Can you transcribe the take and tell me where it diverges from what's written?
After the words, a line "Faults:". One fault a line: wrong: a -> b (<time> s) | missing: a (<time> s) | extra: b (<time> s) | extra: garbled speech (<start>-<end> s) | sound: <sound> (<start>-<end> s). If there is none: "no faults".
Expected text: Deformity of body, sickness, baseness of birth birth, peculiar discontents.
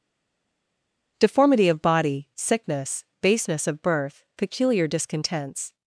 Deformity of body, sickness, baseness of birth, peculiar discontents.
Faults:
missing: birth (4.2 s)